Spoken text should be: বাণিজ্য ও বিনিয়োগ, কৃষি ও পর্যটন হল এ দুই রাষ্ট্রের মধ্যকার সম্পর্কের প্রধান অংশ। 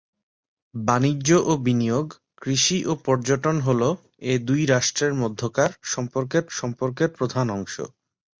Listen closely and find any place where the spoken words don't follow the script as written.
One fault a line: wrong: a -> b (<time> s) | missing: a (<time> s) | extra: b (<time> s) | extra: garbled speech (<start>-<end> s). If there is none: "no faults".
extra: সম্পর্কের (6.6 s)